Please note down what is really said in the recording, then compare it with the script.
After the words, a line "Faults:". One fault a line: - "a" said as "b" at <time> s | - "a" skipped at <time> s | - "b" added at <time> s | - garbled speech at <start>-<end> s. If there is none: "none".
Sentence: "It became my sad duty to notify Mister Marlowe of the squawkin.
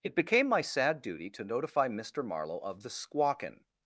"It became my sad duty to notify Mister Marlowe of the squawkin.
Faults:
none